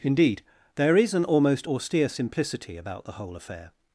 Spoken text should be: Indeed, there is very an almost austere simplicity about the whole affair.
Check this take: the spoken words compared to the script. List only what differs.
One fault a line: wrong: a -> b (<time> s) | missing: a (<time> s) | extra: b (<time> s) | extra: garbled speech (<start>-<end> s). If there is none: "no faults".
missing: very (1.1 s)